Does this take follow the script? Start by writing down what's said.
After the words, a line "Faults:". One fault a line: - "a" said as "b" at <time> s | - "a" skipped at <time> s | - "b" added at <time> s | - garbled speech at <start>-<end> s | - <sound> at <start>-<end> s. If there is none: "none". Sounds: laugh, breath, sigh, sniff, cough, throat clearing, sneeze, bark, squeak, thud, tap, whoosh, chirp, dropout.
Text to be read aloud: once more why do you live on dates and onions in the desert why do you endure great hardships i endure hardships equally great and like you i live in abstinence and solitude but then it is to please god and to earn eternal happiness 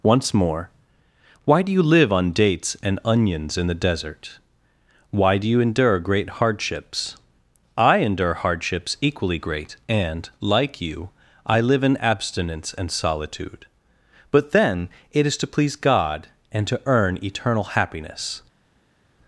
once more why do you live on dates and onions in the desert why do you endure great hardships i endure hardships equally great and like you i live in abstinence and solitude but then it is to please god and to earn eternal happiness
Faults:
none